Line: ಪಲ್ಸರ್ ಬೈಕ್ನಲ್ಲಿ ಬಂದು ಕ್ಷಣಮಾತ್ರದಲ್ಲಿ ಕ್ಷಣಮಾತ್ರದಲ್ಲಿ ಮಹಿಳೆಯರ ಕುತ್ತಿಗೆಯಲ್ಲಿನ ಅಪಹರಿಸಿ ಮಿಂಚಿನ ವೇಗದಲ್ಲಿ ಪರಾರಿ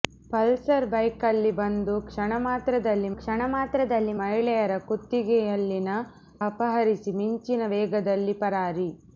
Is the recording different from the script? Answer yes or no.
no